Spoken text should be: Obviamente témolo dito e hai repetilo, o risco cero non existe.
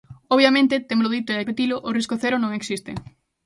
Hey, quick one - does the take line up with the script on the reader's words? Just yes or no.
yes